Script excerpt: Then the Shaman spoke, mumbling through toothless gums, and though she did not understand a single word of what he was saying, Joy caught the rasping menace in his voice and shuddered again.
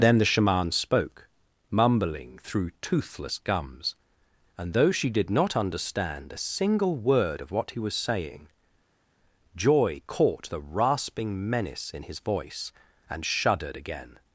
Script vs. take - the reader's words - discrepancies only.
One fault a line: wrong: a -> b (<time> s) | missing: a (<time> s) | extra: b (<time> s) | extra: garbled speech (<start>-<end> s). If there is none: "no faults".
no faults